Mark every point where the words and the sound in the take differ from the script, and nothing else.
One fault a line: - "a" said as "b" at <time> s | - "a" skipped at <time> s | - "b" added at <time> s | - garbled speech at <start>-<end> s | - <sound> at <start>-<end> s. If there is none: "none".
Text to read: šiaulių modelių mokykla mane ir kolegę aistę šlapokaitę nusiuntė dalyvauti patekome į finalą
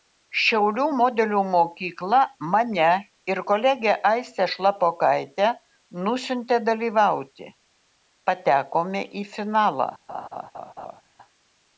- laugh at 10.1-11.0 s